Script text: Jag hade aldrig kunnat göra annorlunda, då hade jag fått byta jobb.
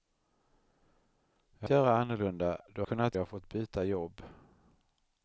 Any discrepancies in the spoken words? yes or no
yes